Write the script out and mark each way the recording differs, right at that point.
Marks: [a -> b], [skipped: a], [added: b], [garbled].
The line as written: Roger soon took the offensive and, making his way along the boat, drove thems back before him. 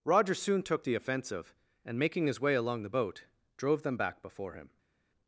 Roger soon took the offensive and, making his way along the boat, drove [thems -> them] back before him.